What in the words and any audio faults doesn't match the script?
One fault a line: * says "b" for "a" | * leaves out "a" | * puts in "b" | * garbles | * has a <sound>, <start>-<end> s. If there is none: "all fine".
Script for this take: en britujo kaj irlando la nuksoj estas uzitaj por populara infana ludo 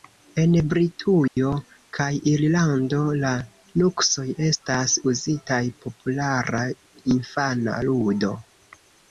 * has a dropout, 1.3-1.4 s
* leaves out "por"